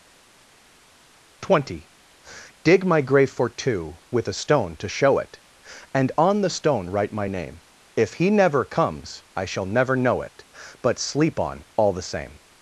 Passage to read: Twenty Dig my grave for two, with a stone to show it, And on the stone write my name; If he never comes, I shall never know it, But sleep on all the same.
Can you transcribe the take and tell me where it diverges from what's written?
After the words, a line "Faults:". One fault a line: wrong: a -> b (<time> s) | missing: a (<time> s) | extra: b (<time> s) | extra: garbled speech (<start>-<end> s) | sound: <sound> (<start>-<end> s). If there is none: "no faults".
Twenty Dig my grave for two, with a stone to show it, And on the stone write my name; If he never comes, I shall never know it, But sleep on all the same.
Faults:
no faults